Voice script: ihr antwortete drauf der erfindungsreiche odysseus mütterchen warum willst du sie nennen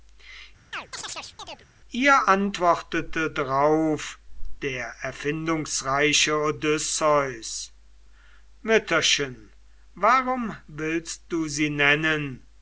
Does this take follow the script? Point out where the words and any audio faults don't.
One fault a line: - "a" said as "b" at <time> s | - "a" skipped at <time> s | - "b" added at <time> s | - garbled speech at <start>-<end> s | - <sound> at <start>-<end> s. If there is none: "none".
- chirp at 0.7-1.7 s